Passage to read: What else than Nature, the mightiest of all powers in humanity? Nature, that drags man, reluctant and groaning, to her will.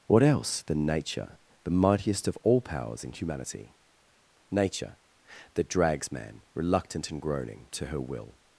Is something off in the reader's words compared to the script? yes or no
no